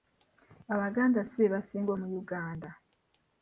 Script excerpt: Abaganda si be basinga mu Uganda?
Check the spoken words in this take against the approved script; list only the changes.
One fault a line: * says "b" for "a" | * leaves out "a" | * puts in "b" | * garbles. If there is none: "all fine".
all fine